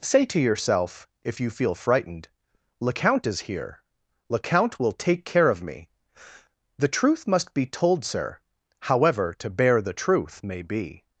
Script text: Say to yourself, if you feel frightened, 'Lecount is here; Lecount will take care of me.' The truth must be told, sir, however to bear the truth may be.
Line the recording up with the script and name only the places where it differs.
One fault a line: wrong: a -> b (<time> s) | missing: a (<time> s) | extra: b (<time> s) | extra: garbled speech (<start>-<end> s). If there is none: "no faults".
no faults